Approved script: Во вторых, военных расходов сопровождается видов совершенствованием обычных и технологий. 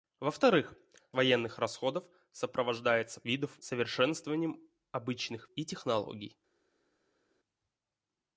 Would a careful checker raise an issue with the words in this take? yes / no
no